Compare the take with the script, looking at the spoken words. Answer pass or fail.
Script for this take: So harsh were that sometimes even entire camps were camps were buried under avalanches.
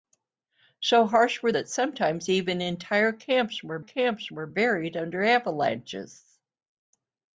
pass